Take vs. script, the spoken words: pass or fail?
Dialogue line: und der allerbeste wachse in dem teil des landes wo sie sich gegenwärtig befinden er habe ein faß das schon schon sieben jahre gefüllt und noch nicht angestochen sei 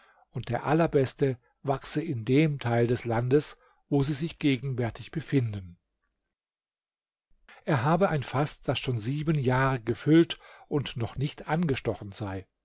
fail